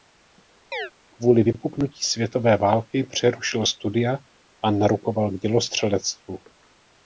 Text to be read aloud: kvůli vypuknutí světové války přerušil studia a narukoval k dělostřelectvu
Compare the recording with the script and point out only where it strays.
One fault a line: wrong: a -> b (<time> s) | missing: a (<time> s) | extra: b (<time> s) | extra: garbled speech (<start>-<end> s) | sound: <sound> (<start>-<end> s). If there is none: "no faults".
sound: chirp (0.7-0.9 s)